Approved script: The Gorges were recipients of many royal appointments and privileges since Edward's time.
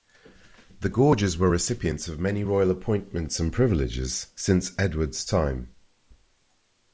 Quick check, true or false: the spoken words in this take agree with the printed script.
true